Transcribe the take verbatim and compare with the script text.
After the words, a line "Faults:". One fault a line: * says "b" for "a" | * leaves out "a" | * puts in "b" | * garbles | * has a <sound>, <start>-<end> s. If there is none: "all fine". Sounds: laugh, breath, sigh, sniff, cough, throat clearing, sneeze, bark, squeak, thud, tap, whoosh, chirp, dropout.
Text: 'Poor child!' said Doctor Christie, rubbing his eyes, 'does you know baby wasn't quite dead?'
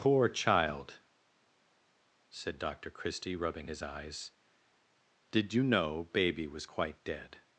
'Poor child!' said Doctor Christie, rubbing his eyes, 'did you know baby was quite dead?'
Faults:
* says "did" for "does"
* says "was" for "wasn't"